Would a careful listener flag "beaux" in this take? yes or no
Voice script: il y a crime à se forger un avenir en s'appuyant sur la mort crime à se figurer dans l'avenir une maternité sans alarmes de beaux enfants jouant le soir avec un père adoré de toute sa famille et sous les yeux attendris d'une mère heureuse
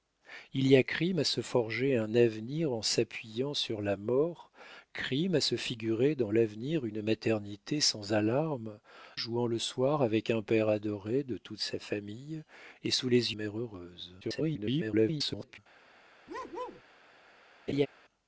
yes